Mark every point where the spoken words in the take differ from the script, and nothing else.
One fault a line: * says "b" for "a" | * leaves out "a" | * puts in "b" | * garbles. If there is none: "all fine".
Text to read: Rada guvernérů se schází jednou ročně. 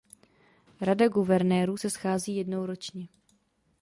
all fine